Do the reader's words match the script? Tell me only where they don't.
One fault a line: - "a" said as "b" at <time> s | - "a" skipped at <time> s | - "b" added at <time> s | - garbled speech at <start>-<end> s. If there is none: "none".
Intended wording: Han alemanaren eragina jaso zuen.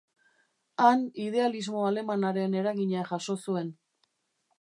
- "idealismo" added at 1.2 s